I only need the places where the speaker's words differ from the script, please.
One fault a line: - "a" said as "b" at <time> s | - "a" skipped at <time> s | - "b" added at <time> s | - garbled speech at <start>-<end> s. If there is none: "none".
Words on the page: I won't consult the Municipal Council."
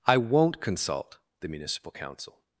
none